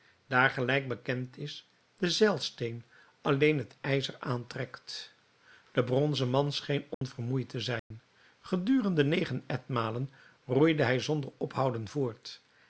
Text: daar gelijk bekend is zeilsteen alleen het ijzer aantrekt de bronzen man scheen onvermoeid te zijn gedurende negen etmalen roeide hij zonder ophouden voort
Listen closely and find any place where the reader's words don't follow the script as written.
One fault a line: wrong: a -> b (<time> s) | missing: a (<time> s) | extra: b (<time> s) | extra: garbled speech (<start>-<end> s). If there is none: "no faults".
extra: de (2.0 s)